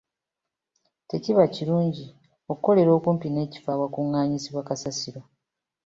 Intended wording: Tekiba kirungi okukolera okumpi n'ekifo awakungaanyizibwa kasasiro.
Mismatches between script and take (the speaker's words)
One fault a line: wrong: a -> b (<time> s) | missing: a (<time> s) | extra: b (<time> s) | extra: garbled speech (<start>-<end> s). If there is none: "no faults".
no faults